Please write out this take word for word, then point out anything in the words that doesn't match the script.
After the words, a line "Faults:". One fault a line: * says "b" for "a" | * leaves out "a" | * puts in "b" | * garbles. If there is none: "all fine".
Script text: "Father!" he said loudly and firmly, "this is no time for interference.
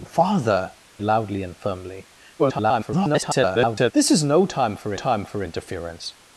"Father!" loudly and firmly, [garbled] "this is no time for time for interference.
Faults:
* leaves out "he said"
* garbles
* puts in "time for"